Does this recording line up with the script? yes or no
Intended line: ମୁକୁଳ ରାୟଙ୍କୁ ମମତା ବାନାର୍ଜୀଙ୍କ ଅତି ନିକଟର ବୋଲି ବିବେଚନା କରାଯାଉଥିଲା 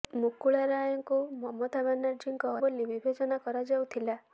no